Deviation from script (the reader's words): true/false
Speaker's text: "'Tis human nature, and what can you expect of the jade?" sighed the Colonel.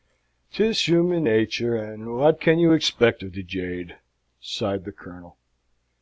false